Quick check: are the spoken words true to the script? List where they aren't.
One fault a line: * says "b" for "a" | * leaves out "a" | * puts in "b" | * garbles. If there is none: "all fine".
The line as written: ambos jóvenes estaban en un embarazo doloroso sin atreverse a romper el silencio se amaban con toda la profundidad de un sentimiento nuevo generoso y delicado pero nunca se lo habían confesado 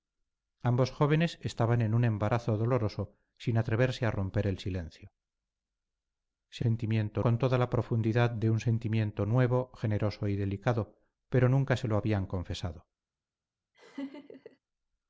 * says "sentimiento" for "amaban"